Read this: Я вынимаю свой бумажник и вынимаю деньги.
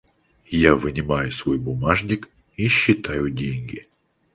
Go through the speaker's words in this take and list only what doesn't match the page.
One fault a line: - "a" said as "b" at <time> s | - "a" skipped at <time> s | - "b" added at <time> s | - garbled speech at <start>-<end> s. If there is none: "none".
- "вынимаю" said as "считаю" at 2.7 s